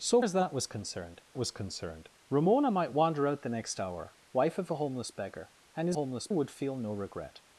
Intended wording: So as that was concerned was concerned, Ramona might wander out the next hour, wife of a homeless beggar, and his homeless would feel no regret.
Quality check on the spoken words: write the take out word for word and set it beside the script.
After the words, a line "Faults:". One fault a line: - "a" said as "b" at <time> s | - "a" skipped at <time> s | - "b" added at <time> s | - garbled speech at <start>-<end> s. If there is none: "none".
So as that was concerned was concerned, Ramona might wander out the next hour, wife of a homeless beggar, and his homeless would feel no regret.
Faults:
none